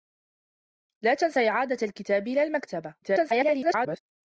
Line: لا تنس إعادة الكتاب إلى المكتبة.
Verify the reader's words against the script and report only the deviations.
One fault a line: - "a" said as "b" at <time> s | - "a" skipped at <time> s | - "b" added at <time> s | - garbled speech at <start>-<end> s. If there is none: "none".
- garbled speech at 3.0-4.0 s